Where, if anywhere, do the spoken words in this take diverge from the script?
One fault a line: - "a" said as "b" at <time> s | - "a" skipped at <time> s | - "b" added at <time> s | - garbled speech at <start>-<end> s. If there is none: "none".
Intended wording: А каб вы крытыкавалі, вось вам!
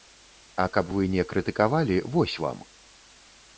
- "не" added at 1.2 s